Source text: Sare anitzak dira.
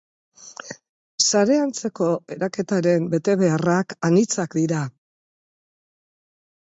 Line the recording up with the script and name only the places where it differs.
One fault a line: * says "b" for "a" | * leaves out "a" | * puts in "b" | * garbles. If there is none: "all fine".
* puts in "antzeko eraketaren betebeharrak"